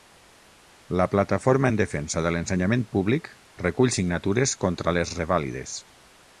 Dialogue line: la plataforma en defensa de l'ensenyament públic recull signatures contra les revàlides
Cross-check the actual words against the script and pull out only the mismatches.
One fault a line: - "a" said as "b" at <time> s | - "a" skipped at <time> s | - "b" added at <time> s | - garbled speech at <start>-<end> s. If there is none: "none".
none